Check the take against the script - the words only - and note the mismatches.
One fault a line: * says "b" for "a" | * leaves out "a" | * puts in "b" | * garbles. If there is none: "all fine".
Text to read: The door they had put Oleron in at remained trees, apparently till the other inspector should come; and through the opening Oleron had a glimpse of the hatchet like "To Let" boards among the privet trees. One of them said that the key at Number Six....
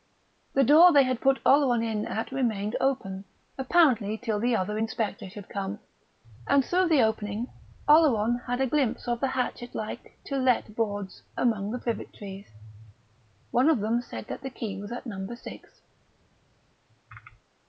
* says "open" for "trees"
* puts in "was"